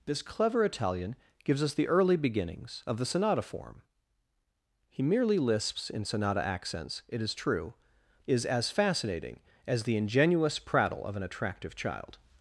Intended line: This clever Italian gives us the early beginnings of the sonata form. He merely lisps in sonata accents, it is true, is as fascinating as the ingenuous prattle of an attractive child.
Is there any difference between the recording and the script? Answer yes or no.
no